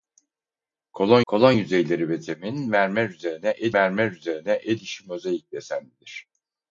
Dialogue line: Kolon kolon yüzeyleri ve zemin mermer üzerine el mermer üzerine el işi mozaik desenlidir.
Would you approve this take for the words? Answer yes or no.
yes